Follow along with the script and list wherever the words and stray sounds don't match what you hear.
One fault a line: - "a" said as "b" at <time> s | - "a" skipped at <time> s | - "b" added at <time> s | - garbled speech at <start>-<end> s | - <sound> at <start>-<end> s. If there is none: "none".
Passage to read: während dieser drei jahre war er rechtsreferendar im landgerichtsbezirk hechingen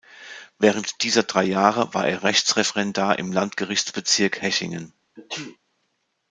- sneeze at 5.2-5.6 s